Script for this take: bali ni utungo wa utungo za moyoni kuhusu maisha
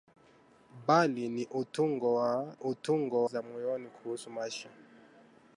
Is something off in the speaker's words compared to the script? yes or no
no